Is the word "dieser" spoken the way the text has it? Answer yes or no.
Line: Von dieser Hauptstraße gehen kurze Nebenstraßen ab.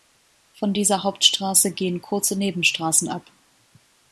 yes